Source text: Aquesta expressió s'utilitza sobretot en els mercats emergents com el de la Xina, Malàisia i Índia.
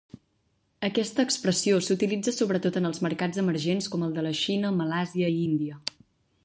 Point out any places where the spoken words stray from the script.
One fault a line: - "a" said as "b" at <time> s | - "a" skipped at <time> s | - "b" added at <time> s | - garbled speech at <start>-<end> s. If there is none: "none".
none